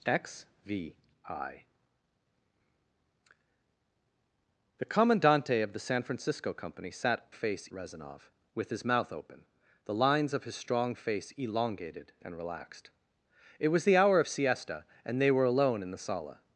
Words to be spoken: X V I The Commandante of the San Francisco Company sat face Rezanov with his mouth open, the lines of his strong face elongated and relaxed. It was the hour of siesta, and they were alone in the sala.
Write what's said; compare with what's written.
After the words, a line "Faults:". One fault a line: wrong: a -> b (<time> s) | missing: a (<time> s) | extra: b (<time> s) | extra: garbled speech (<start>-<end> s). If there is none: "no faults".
X V I The Commandante of the San Francisco Company sat face Rezanov with his mouth open, the lines of his strong face elongated and relaxed. It was the hour of siesta, and they were alone in the sala.
Faults:
no faults